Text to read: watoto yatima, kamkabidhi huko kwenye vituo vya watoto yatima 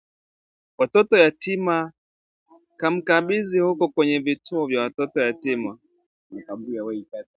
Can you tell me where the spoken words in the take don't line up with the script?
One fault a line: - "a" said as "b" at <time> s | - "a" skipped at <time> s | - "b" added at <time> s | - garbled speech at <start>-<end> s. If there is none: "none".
none